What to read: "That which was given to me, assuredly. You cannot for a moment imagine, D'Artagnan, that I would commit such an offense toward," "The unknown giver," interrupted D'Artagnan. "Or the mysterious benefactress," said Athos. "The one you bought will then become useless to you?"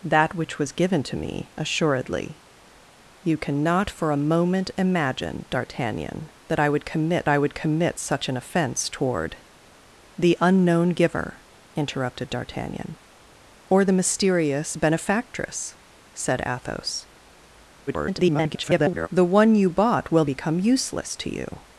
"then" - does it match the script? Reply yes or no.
no